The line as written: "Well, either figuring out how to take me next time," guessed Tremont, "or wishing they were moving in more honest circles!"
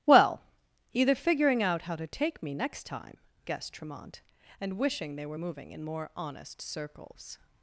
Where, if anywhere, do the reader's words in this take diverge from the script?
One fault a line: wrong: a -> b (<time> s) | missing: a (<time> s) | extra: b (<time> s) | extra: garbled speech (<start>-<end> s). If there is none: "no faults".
wrong: or -> and (4.6 s)